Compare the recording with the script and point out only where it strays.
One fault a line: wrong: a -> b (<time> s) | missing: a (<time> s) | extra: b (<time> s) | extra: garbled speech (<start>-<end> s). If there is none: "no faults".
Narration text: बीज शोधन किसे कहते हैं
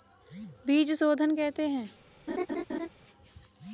missing: किसे (1.4 s)